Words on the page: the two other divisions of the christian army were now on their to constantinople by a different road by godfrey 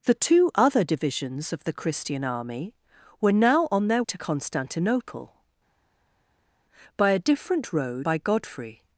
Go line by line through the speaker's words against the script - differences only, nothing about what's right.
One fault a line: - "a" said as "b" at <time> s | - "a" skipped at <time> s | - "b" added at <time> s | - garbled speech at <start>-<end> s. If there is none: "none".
none